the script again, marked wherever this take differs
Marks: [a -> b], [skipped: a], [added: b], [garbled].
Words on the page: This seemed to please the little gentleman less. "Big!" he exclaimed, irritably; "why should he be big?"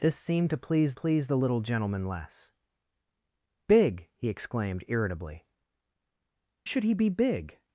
This seemed to please [added: please] the little gentleman less. "Big!" he exclaimed, irritably; [skipped: "why] should he be big?"